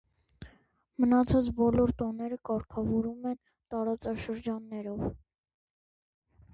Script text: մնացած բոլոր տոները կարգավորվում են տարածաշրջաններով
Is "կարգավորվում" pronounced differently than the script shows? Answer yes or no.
no